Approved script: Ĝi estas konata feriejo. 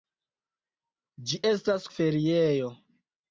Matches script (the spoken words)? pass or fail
fail